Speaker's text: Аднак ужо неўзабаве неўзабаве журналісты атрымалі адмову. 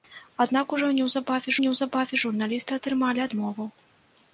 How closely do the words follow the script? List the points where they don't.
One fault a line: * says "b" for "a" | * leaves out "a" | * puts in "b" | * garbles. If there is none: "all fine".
all fine